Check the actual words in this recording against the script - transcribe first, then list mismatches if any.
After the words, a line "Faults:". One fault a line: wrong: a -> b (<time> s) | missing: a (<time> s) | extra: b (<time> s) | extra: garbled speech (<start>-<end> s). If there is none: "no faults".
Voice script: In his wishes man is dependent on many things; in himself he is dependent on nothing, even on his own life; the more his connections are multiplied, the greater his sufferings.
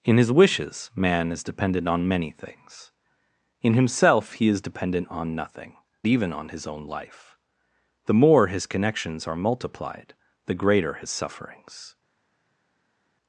In his wishes man is dependent on many things; in himself he is dependent on nothing, even on his own life; the more his connections are multiplied, the greater his sufferings.
Faults:
no faults